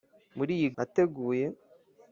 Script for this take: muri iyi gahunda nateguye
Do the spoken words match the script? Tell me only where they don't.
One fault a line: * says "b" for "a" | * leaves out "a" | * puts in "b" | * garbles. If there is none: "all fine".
* leaves out "gahunda"